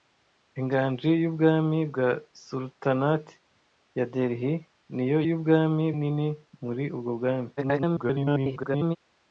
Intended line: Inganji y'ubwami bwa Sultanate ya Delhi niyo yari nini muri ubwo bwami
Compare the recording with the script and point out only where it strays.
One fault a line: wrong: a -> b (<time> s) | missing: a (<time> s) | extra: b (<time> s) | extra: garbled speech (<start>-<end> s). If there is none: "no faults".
wrong: yari -> y'ubwami (5.3 s)
extra: garbled speech (7.6-9.0 s)